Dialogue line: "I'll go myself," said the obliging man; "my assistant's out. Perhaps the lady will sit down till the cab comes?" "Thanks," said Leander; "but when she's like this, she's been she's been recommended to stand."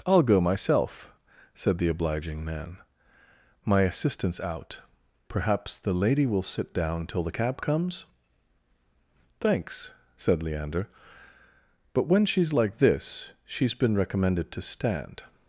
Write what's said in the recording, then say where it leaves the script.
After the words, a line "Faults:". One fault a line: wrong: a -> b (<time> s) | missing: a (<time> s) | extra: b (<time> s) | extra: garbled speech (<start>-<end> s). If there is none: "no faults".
"I'll go myself," said the obliging man; "my assistant's out. Perhaps the lady will sit down till the cab comes?" "Thanks," said Leander; "but when she's like this, she's been recommended to stand."
Faults:
missing: she's been (13.9 s)